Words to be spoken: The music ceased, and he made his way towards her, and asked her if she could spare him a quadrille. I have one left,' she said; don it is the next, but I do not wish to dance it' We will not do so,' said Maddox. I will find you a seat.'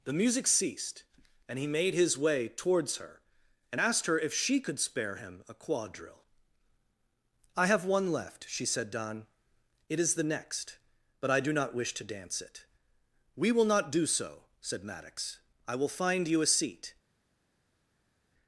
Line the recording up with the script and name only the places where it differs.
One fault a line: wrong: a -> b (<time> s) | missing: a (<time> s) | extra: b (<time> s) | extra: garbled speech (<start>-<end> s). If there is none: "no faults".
no faults